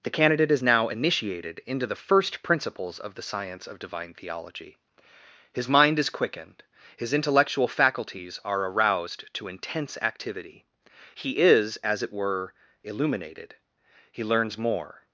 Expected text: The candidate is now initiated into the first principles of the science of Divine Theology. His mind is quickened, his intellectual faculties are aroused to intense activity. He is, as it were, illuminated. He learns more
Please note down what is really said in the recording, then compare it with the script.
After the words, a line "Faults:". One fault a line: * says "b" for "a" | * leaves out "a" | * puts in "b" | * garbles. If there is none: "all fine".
The candidate is now initiated into the first principles of the science of Divine Theology. His mind is quickened, his intellectual faculties are aroused to intense activity. He is, as it were, illuminated. He learns more
Faults:
all fine